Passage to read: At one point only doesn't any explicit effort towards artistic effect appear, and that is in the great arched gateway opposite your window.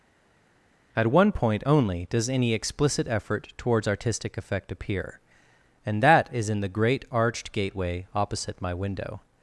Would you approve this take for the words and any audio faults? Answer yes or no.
no